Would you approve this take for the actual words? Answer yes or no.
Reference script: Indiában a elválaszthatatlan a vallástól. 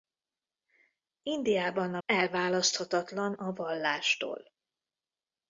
yes